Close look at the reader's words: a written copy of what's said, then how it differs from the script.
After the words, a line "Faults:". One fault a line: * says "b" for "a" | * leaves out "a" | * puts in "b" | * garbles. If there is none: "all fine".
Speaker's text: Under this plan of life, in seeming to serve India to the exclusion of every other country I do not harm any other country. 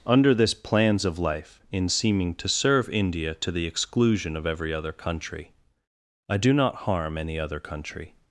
Under this plans of life, in seeming to serve India to the exclusion of every other country I do not harm any other country.
Faults:
* says "plans" for "plan"